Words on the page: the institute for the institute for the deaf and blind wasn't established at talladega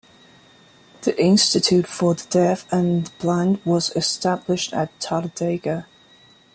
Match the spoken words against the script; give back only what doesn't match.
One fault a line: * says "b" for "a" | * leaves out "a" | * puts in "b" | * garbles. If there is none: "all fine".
* leaves out "institute for the"
* says "was" for "wasn't"